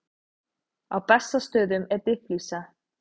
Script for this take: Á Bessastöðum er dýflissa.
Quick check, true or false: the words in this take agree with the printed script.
true